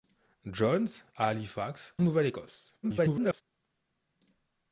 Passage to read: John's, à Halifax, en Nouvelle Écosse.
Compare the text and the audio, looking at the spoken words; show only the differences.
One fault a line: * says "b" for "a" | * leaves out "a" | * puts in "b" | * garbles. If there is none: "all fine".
* leaves out "en"
* garbles